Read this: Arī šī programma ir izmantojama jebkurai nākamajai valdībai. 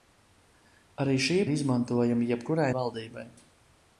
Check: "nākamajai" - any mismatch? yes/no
yes